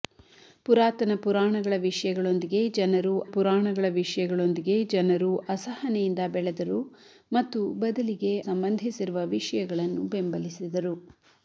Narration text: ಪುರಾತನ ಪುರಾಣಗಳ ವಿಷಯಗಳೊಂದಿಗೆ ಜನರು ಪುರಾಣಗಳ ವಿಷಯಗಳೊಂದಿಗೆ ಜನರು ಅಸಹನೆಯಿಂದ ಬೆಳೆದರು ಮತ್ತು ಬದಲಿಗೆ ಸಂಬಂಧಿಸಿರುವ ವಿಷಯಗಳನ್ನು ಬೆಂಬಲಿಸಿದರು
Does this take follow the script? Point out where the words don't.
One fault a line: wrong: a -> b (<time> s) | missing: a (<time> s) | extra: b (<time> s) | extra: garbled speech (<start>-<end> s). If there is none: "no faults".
no faults